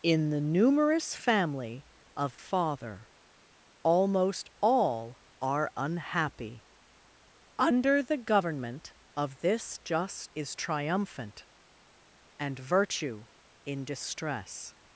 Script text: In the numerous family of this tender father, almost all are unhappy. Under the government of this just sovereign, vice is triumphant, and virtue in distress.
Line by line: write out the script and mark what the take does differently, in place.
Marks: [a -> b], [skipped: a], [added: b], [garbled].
In the numerous family of [skipped: this tender] father, almost all are unhappy. Under the government of this just [skipped: sovereign, vice] is triumphant, and virtue in distress.